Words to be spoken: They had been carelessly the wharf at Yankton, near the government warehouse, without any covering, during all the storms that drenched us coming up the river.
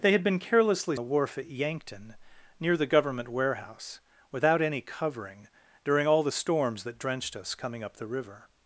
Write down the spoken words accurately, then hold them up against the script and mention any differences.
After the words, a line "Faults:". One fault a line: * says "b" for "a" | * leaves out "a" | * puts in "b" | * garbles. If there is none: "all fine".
They had been carelessly the wharf at Yankton, near the government warehouse, without any covering, during all the storms that drenched us coming up the river.
Faults:
all fine